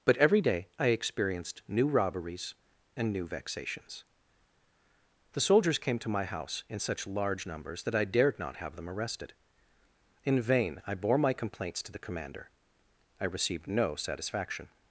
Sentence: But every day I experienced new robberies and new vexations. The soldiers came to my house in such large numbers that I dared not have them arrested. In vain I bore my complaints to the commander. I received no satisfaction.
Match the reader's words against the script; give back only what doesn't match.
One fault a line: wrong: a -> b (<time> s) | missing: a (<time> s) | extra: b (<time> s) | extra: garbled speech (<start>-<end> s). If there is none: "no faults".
no faults